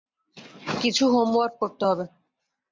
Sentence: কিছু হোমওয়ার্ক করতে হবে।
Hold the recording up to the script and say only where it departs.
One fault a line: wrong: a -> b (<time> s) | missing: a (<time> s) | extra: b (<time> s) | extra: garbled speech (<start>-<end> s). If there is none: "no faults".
no faults